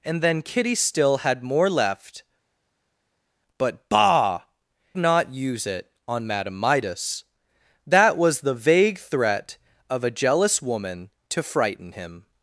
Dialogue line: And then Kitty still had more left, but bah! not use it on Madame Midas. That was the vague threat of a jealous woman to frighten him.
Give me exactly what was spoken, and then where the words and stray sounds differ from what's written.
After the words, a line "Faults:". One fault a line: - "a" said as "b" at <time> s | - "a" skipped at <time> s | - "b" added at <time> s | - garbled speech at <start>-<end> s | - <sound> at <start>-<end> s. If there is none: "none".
And then Kitty still had more left, but bah! not use it on Madame Midas. That was the vague threat of a jealous woman to frighten him.
Faults:
none